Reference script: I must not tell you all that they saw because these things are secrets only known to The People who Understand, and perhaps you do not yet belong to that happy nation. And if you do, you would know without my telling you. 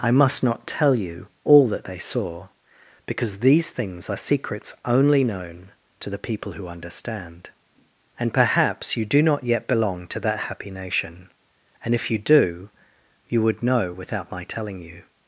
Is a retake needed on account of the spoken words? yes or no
no